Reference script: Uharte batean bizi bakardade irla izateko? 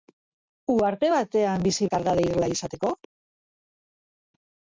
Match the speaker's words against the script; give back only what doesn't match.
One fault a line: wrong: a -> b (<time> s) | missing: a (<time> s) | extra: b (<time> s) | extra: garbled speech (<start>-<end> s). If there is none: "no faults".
no faults